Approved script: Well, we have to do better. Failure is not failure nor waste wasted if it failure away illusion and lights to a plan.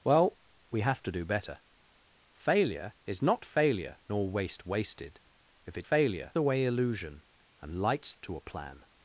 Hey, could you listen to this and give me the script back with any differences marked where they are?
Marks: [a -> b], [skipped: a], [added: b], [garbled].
Well, we have to do better. Failure is not failure nor waste wasted if it failure away illusion and lights to a plan.